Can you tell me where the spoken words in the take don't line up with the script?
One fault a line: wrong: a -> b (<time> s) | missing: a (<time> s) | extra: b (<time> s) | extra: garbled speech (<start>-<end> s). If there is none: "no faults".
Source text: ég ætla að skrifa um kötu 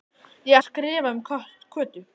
missing: ætla (0.6 s)